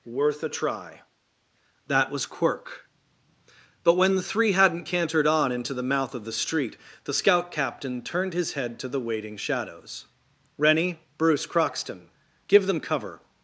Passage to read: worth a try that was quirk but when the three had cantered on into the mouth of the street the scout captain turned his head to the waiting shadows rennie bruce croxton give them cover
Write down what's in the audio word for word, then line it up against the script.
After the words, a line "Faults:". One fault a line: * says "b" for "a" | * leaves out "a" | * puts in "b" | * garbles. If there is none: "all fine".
worth a try that was quirk but when the three hadn't cantered on into the mouth of the street the scout captain turned his head to the waiting shadows rennie bruce croxton give them cover
Faults:
* says "hadn't" for "had"